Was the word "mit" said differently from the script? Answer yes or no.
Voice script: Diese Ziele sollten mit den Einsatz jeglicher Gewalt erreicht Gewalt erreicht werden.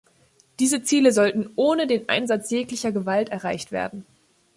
yes